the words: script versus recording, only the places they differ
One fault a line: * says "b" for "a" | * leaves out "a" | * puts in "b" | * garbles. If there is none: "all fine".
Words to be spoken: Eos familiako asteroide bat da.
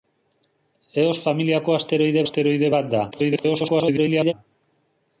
* puts in "asteroide"
* garbles